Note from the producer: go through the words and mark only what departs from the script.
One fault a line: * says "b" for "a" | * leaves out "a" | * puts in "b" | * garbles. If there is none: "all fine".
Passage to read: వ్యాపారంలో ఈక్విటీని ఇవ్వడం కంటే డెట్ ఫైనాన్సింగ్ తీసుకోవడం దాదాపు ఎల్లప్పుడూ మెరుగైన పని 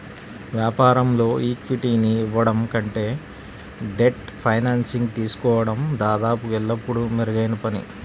all fine